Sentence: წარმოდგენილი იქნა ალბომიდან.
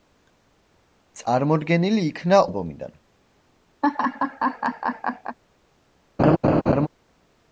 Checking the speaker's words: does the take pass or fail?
pass